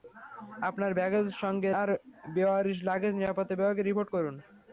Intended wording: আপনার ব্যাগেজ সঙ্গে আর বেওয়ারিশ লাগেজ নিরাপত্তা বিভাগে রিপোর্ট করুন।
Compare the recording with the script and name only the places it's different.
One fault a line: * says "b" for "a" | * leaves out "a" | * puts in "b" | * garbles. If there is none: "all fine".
all fine